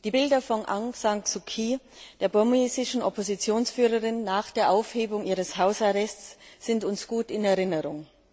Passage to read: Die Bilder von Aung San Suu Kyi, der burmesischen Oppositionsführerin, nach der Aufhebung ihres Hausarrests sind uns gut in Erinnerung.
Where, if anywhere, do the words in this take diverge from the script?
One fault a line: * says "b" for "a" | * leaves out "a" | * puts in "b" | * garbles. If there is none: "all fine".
all fine